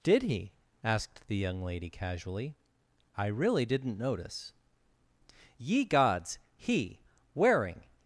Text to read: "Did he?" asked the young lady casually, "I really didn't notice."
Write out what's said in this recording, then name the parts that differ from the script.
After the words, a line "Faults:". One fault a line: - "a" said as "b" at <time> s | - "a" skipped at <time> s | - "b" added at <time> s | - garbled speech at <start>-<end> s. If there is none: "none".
"Did he?" asked the young lady casually, "I really didn't notice." Ye Gods! He, wearing
Faults:
- "Ye Gods He wearing" added at 5.6 s